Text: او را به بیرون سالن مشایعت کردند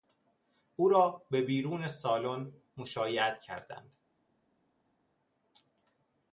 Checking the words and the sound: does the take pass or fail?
pass